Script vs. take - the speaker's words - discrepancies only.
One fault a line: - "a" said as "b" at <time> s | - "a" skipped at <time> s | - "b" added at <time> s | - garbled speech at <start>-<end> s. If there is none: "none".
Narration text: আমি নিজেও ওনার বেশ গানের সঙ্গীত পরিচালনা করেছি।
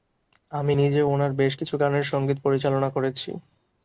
- "কিছু" added at 1.6 s